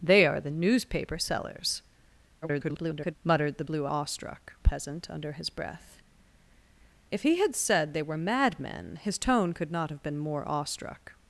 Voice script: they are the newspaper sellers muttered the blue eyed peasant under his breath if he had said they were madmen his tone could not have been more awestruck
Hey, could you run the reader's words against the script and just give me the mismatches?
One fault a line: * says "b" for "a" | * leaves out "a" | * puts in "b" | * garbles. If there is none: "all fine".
* garbles
* says "awestruck" for "eyed"